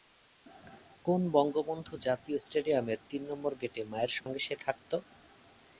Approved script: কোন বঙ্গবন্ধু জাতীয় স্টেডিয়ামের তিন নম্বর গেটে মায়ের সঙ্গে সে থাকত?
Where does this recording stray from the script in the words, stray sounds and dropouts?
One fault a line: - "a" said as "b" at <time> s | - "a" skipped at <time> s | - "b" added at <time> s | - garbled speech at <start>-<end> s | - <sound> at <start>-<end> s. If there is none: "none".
- dropout at 4.2-4.3 s